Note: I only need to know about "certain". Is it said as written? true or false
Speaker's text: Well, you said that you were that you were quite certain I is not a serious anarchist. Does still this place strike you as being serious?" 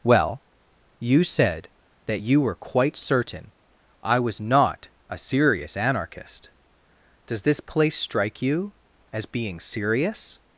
true